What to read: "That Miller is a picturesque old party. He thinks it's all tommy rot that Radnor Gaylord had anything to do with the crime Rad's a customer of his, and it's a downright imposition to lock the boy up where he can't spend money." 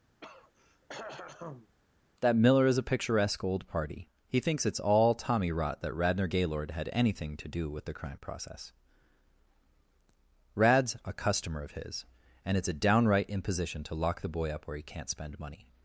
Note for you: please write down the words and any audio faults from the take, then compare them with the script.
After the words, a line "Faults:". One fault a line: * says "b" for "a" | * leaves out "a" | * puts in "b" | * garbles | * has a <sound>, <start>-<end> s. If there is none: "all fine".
"That Miller is a picturesque old party. He thinks it's all tommy rot that Radnor Gaylord had anything to do with the crime process Rad's a customer of his, and it's a downright imposition to lock the boy up where he can't spend money."
Faults:
* has a throat clearing, 0.2-1.7 s
* puts in "process"